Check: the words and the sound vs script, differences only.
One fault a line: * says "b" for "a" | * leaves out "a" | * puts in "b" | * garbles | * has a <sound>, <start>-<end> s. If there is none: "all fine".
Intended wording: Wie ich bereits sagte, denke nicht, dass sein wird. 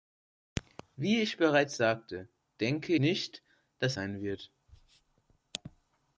all fine